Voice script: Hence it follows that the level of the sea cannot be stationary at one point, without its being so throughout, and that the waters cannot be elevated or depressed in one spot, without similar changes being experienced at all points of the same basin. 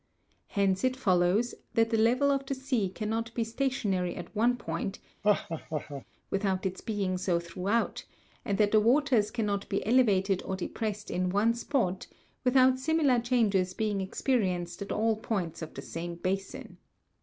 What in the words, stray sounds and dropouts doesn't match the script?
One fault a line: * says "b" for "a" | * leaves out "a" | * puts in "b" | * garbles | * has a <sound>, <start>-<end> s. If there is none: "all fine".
* has a laugh, 5.2-6.0 s